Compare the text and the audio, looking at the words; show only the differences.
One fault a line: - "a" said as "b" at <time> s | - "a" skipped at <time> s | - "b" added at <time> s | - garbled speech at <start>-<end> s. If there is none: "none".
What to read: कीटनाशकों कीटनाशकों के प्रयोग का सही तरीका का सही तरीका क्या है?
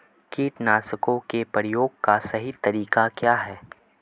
- "कीटनाशकों" skipped at 1.2 s
- "का सही तरीका" skipped at 3.1 s